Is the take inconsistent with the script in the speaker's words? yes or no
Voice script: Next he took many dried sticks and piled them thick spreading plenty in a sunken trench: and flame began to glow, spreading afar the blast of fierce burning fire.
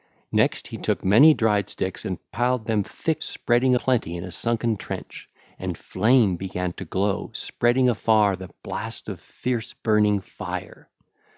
no